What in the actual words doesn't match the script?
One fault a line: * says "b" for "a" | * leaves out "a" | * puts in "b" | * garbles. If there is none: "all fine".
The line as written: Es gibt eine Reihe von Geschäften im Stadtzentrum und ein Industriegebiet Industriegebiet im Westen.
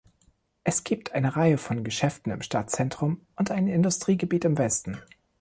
* leaves out "Industriegebiet"